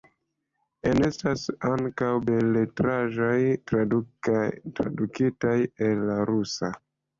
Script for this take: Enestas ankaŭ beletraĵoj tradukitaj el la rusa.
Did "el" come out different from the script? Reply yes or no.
no